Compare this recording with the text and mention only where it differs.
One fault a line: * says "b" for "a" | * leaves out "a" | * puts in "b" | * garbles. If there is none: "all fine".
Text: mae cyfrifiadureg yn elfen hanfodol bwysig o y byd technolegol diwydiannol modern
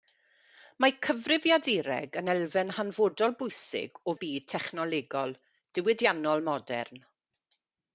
all fine